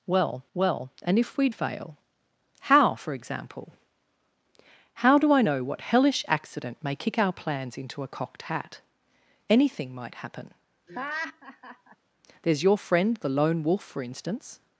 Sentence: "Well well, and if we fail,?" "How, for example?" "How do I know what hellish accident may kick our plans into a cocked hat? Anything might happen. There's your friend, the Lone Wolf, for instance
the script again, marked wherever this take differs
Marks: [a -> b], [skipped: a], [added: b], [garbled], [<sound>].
"Well well, and if we fail,?" "How, for example?" "How do I know what hellish accident may kick our plans into a cocked hat? Anything might happen. [laugh] There's your friend, the Lone Wolf, for instance